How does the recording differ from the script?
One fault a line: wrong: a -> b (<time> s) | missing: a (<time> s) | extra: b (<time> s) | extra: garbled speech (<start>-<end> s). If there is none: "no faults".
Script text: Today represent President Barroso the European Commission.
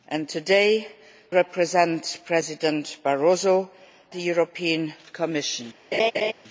no faults